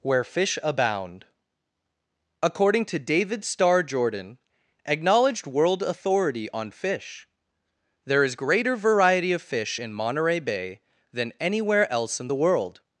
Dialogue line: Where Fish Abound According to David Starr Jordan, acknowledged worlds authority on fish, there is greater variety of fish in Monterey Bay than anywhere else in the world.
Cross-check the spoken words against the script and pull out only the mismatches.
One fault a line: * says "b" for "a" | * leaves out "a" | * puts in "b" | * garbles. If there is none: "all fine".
* says "world" for "worlds"